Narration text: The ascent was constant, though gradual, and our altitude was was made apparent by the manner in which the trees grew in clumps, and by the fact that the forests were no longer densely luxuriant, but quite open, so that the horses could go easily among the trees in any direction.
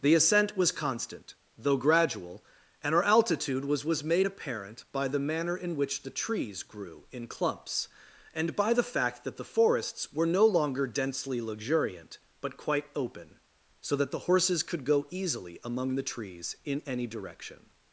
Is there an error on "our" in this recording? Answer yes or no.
no